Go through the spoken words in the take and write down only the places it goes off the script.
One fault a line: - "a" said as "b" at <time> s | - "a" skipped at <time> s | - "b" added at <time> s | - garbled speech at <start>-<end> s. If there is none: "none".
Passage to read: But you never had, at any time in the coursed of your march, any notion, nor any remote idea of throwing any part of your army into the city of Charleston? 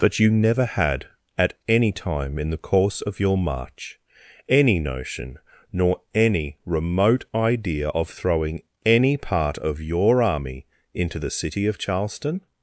- "coursed" said as "course" at 2.6 s